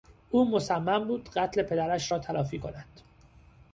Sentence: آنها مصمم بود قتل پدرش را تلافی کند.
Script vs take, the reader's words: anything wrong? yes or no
yes